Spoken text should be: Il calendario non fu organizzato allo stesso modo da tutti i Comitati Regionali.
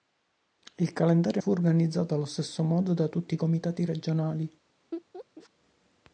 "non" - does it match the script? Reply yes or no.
no